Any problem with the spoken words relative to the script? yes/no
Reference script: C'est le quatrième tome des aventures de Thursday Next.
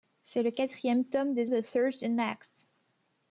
yes